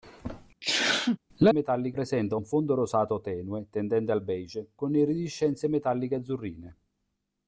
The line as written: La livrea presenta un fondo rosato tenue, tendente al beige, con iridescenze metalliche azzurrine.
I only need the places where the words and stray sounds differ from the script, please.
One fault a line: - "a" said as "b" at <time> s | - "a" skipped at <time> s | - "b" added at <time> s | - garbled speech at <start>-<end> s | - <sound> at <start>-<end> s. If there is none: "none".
- sneeze at 0.6-1.2 s
- "livrea" said as "metalliche" at 1.5 s